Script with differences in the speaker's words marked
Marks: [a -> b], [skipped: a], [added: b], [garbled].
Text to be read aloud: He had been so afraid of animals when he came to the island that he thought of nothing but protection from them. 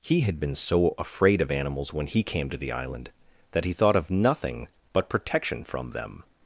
He had been so afraid of animals when he came to the island that he thought of nothing but protection from them.